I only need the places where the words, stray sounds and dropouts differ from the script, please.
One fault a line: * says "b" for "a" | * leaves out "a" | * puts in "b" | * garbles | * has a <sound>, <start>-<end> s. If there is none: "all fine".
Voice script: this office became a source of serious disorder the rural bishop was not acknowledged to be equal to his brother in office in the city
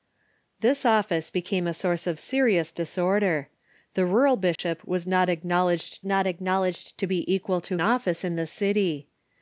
* has a dropout, 4.6-4.6 s
* puts in "not acknowledged"
* leaves out "his brother in"